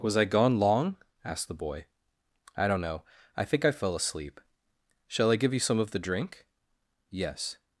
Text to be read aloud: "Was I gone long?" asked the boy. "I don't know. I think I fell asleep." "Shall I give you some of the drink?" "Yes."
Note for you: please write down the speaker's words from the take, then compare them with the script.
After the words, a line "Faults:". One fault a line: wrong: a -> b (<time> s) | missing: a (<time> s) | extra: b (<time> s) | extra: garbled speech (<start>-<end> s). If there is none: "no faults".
"Was I gone long?" asked the boy. "I don't know. I think I fell asleep." "Shall I give you some of the drink?" "Yes."
Faults:
no faults